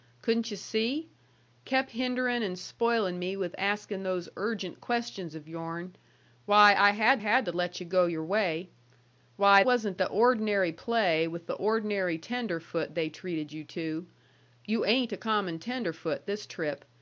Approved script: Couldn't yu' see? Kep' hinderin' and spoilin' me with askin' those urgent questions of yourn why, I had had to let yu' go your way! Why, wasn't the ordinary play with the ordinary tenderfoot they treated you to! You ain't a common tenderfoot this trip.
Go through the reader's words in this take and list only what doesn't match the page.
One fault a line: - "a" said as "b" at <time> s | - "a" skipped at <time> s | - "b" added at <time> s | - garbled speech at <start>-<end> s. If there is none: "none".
none